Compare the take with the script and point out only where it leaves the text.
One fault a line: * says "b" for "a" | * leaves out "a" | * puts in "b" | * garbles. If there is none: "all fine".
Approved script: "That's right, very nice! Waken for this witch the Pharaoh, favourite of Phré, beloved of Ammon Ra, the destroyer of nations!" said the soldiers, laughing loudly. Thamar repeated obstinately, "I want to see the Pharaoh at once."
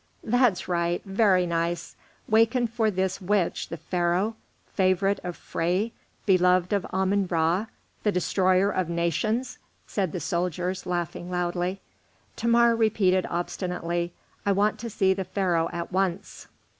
all fine